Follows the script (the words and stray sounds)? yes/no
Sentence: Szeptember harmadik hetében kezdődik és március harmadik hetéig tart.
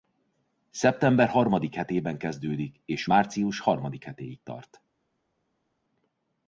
yes